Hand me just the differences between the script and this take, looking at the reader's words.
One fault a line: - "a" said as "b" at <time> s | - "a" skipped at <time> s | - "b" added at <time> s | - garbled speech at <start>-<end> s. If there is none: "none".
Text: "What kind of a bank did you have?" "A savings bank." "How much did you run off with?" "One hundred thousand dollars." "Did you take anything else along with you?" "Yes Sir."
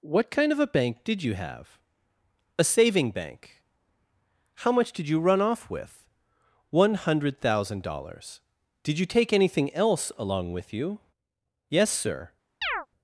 - "savings" said as "saving" at 2.6 s